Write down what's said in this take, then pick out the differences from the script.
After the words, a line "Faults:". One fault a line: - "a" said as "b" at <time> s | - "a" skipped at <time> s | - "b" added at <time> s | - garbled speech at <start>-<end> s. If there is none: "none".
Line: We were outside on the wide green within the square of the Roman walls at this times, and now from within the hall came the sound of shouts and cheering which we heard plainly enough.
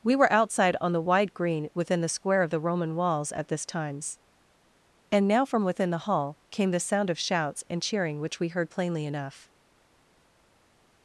We were outside on the wide green within the square of the Roman walls at this times, and now from within the hall came the sound of shouts and cheering which we heard plainly enough.
Faults:
none